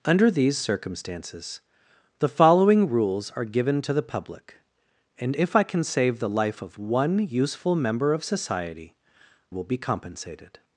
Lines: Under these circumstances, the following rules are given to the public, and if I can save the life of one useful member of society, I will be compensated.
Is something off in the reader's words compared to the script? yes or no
yes